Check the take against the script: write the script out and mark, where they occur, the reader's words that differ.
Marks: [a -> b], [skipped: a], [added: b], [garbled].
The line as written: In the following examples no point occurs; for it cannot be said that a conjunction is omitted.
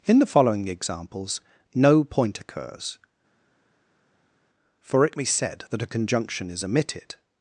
In the following examples no point occurs; for it [skipped: cannot] be said that a conjunction is omitted.